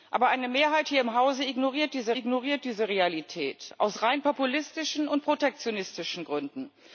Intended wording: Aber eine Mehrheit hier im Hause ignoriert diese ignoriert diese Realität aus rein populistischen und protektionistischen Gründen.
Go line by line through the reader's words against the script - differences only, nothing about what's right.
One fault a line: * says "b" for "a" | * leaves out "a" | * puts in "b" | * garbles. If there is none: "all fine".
all fine